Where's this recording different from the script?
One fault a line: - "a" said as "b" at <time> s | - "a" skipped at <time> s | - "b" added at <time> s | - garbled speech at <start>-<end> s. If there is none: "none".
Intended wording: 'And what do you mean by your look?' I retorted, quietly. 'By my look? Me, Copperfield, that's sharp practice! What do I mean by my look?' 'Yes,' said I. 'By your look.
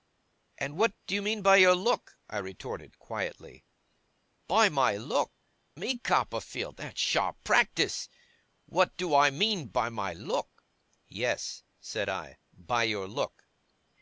none